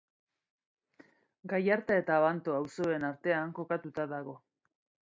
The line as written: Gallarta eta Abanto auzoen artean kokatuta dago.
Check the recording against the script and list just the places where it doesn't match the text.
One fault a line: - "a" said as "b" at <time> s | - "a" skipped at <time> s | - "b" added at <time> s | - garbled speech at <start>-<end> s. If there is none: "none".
none